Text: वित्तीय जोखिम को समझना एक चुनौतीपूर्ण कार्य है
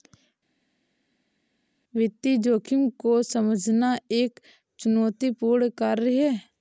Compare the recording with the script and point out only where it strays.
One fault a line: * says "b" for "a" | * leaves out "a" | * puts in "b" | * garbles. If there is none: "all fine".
all fine